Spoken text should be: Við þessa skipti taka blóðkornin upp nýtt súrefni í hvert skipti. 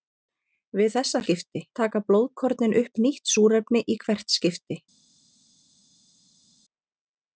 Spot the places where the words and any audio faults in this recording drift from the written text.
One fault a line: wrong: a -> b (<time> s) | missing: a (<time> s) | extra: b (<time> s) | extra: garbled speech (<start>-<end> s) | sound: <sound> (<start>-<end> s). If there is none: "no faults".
no faults